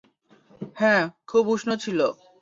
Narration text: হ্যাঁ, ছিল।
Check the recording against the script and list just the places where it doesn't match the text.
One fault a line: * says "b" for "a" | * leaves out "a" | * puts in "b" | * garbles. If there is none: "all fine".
* puts in "খুব উষ্ণ"